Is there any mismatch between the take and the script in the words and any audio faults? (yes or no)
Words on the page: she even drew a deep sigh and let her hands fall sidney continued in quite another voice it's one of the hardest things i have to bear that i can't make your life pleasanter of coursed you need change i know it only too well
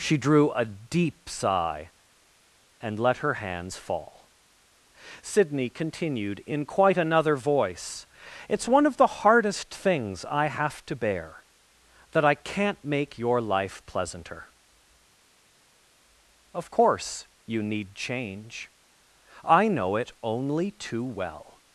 yes